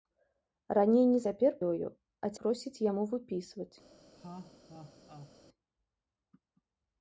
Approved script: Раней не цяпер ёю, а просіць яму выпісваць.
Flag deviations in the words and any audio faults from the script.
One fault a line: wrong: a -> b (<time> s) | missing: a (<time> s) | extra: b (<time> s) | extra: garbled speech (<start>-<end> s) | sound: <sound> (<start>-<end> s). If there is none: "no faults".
sound: laugh (4.1-5.3 s)